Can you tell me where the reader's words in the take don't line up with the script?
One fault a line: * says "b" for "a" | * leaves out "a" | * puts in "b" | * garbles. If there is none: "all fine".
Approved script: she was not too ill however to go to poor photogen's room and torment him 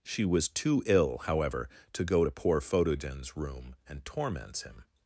* leaves out "not"
* says "torments" for "torment"